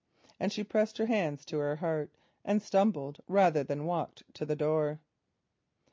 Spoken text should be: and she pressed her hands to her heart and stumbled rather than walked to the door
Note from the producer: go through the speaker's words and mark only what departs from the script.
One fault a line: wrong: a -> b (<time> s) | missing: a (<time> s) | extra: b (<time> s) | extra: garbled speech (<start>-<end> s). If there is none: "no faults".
no faults